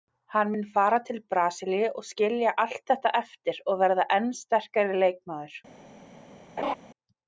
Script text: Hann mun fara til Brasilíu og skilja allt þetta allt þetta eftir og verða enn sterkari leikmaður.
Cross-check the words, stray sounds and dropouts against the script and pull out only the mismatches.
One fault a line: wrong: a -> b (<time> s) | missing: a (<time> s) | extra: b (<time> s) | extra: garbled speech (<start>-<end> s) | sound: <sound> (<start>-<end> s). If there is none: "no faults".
missing: allt þetta (3.1 s)
sound: laugh (6.6-6.7 s)